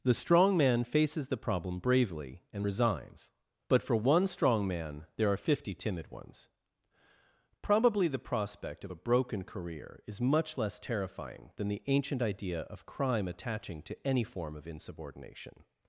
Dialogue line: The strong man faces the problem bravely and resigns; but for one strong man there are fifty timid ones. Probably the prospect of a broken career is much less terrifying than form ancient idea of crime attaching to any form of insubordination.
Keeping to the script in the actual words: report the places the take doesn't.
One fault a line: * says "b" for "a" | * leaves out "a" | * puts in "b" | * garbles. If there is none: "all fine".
* says "the" for "form"